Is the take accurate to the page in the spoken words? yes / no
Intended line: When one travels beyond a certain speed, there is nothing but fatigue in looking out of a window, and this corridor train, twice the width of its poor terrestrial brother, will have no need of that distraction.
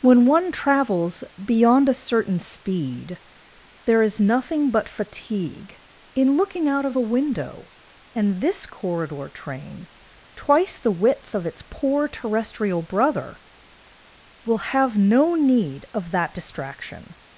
yes